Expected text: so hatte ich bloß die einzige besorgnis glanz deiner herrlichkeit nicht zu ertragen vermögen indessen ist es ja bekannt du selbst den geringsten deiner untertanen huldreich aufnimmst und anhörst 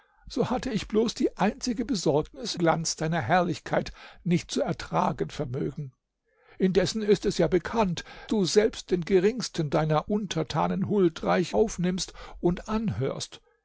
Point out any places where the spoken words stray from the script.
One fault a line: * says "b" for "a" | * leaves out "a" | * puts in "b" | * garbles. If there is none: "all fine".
all fine